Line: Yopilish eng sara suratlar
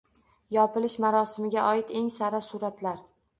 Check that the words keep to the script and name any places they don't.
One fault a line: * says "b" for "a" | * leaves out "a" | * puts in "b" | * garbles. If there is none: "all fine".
* puts in "marosimiga oid"